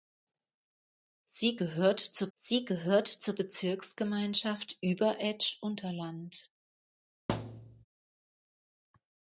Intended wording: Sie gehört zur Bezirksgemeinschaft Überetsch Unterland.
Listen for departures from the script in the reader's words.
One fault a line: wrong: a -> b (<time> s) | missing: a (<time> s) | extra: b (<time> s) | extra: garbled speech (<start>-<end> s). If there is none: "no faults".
extra: sie gehört zur (2.3 s)